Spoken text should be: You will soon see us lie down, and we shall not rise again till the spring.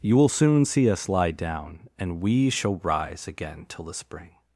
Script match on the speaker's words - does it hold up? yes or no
no